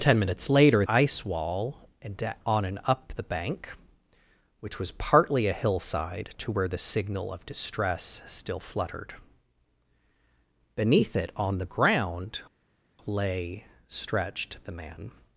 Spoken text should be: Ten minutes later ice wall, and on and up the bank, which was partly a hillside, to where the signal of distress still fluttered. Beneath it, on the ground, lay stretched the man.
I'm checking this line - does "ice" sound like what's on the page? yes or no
yes